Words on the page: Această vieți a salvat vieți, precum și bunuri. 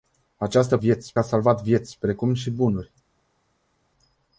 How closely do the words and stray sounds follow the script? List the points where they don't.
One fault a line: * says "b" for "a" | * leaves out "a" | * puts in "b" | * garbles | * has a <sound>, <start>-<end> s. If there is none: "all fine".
all fine